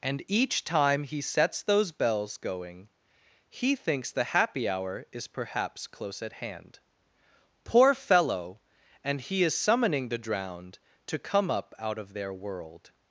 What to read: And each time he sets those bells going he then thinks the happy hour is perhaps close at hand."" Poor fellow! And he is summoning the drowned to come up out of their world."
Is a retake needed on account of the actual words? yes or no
yes